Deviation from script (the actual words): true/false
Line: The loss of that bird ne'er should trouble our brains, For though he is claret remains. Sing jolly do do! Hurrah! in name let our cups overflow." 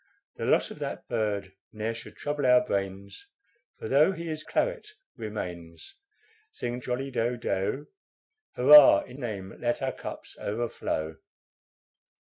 false